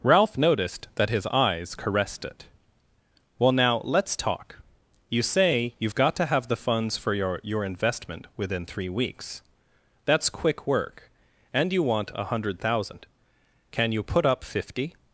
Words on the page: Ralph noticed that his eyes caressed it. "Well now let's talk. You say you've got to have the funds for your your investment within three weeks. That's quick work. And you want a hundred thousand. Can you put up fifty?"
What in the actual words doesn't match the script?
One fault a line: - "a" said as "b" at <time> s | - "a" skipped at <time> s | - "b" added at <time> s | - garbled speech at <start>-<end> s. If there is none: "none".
none